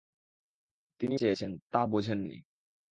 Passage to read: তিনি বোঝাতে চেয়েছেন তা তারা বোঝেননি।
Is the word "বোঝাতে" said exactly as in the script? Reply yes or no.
no